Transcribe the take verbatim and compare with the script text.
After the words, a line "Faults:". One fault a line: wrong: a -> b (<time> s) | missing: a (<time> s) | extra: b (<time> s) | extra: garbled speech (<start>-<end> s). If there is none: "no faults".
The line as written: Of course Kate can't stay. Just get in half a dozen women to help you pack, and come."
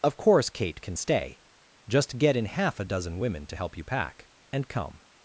Of course Kate can stay. Just get in half a dozen women to help you pack, and come."
Faults:
wrong: can't -> can (0.8 s)